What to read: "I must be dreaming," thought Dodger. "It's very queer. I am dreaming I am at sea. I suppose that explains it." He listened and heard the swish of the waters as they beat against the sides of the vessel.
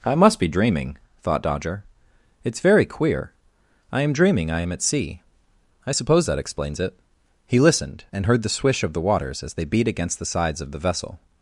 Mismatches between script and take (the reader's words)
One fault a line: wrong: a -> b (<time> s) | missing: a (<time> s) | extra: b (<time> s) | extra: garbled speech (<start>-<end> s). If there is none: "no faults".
no faults